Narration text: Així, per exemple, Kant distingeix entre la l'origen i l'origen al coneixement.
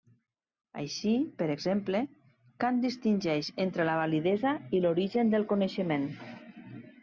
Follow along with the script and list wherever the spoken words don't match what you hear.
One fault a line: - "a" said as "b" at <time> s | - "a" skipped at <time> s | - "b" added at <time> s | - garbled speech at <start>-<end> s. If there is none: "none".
- "l'origen" said as "validesa" at 4.1 s
- "al" said as "del" at 5.4 s